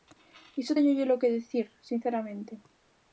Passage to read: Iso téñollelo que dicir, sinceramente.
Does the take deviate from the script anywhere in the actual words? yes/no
no